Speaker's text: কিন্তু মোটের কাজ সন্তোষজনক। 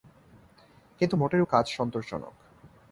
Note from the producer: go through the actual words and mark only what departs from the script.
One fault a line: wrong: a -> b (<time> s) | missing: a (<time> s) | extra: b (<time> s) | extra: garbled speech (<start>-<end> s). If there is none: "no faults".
no faults